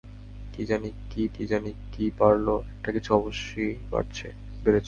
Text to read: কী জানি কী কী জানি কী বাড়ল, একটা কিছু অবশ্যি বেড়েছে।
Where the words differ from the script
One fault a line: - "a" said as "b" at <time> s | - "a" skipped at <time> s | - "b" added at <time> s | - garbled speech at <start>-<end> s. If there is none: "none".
none